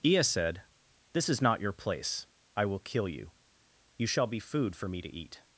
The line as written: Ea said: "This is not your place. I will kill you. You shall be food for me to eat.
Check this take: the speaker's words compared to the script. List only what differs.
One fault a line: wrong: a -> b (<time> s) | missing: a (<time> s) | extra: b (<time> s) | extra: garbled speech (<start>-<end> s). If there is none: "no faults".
no faults